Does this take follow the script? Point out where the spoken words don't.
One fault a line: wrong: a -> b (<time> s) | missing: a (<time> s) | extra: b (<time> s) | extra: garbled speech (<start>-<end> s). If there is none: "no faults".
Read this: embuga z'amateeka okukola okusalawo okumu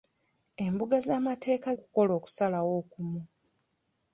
no faults